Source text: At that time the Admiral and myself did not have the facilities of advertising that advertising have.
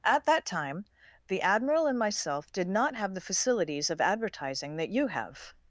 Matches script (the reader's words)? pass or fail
fail